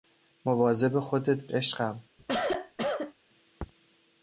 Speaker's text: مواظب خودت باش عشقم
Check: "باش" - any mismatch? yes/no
yes